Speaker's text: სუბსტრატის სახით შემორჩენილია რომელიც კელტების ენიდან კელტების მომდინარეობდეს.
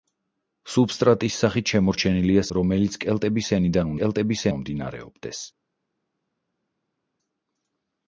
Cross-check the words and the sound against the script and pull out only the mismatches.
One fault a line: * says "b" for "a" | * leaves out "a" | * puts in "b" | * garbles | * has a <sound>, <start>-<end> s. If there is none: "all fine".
all fine